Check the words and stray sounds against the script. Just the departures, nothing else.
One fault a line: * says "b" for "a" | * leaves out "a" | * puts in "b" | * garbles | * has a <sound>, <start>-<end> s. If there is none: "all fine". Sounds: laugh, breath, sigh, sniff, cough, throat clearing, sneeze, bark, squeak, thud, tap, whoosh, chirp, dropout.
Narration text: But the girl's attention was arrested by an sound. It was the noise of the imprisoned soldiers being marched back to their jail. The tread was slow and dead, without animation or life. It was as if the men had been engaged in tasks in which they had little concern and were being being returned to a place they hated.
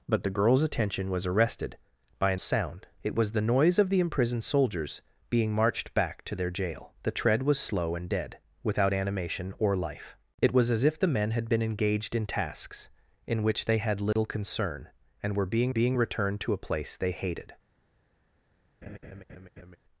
* has a dropout, 14.1-14.2 s
* has a laugh, 18.8-19.8 s